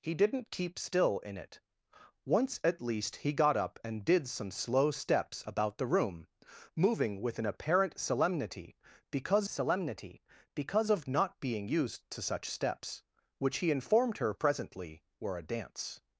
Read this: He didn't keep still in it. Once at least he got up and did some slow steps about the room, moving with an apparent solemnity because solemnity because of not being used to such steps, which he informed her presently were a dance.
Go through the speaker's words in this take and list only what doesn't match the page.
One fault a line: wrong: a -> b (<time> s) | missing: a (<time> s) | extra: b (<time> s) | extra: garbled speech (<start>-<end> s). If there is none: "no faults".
no faults